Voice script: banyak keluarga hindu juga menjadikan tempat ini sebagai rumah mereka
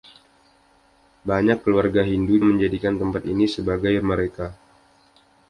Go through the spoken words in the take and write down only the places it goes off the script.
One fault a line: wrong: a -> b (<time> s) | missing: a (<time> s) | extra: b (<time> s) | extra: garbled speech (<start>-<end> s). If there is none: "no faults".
missing: juga (2.4 s)
missing: rumah (3.9 s)